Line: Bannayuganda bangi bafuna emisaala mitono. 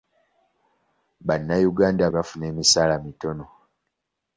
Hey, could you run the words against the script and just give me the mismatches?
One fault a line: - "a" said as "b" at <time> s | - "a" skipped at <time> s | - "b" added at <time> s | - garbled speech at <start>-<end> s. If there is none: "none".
- "bangi" skipped at 2.0 s